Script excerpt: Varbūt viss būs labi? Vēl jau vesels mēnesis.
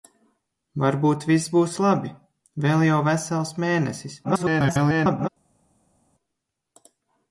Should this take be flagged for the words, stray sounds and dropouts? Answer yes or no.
yes